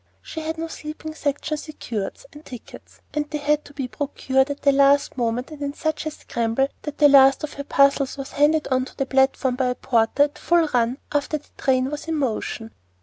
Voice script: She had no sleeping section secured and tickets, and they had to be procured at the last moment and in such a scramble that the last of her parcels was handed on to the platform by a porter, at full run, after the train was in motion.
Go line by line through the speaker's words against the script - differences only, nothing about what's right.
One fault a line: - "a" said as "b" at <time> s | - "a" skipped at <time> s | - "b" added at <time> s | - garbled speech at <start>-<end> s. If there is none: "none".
none